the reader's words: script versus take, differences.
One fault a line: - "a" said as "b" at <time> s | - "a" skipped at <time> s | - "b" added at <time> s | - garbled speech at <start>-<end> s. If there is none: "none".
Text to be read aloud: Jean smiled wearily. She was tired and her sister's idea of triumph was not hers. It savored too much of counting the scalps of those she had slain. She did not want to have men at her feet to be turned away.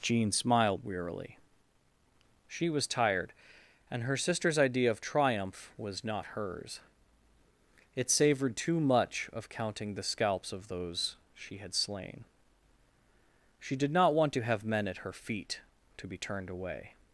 none